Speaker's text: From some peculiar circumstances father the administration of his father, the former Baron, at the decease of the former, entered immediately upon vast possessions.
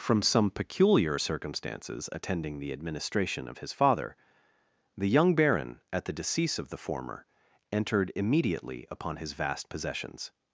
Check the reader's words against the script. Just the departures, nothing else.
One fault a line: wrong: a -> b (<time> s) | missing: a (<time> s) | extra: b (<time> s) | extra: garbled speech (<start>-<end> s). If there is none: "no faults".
wrong: father -> attending (2.1 s)
wrong: former -> young (5.1 s)
extra: his (9.2 s)